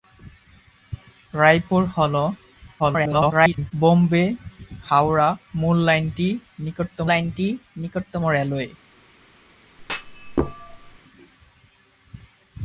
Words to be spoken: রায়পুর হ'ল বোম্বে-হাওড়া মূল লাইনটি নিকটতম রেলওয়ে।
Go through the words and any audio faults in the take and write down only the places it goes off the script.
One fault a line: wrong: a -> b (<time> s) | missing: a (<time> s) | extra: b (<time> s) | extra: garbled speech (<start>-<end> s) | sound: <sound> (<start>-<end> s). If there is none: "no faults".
extra: garbled speech (2.8-3.7 s)
extra: লাইনটি নিকটতম (7.1 s)
sound: thud (9.8-11.0 s)